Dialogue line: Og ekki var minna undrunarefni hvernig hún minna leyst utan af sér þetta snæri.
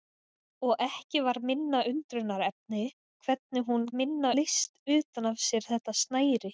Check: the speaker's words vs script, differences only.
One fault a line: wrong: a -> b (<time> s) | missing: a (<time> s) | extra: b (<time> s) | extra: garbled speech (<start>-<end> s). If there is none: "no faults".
no faults